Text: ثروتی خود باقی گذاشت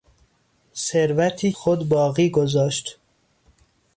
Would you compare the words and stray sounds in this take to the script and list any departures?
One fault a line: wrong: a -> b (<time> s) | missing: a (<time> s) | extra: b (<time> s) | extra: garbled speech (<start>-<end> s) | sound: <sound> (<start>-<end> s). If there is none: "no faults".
no faults